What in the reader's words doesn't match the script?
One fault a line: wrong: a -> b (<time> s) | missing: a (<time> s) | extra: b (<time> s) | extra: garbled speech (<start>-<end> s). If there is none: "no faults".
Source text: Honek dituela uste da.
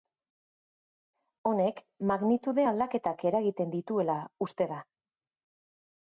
extra: magnitude aldaketak eragiten (2.1 s)